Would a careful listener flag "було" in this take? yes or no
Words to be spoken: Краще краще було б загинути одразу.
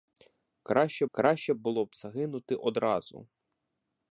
no